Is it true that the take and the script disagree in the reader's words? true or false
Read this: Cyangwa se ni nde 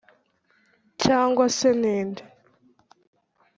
false